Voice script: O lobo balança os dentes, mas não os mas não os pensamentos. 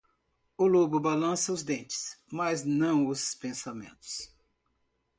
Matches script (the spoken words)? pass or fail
fail